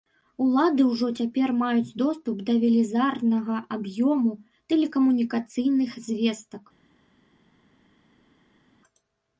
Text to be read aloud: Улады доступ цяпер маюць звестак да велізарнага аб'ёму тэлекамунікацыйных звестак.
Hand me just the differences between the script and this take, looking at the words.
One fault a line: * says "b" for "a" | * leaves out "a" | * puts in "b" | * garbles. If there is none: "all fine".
* says "ўжо" for "доступ"
* says "доступ" for "звестак"